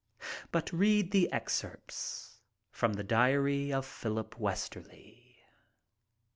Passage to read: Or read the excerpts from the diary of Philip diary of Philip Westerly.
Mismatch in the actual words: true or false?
true